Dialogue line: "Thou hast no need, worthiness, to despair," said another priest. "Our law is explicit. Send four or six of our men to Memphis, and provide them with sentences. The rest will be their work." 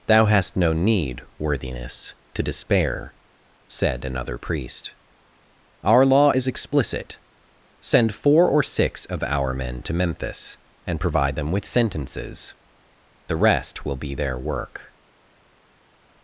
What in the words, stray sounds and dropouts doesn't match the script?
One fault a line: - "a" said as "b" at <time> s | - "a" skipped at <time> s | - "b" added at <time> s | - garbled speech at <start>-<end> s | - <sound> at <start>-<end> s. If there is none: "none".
none